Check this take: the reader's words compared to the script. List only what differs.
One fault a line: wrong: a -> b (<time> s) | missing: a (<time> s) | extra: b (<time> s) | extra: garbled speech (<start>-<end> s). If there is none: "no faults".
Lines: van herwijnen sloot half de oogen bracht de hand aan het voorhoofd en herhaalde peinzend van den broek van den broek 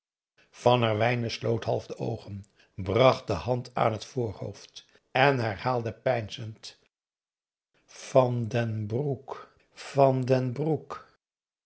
no faults